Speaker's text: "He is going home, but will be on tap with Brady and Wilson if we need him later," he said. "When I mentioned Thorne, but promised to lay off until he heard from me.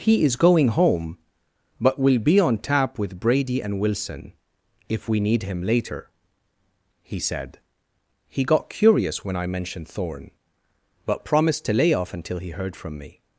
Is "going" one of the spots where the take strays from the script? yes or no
no